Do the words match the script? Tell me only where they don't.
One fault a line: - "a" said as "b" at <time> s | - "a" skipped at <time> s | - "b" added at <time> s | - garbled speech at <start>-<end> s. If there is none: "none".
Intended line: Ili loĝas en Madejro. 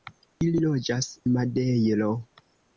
- "en" skipped at 1.1 s